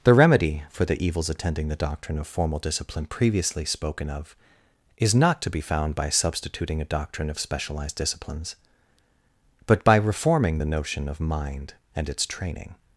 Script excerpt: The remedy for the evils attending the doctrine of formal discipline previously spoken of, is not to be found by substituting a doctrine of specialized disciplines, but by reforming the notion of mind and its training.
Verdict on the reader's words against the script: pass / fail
pass